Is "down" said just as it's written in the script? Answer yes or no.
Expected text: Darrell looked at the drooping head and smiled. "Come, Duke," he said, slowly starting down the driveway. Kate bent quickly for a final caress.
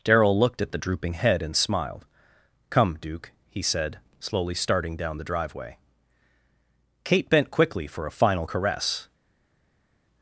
yes